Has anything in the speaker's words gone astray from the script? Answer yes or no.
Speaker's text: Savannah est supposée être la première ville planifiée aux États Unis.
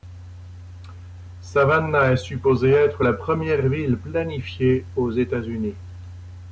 no